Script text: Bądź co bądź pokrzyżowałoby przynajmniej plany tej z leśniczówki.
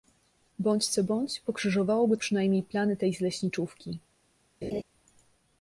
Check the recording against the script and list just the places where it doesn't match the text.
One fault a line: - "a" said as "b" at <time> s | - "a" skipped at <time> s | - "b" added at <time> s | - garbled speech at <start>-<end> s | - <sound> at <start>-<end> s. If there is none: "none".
- laugh at 4.6-4.8 s